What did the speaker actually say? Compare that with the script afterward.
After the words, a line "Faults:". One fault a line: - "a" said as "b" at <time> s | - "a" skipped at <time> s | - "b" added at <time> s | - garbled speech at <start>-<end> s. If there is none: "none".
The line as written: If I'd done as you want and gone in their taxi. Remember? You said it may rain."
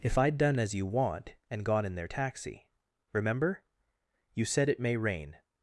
If I'd done as you want and gone in their taxi. Remember? You said it may rain."
Faults:
none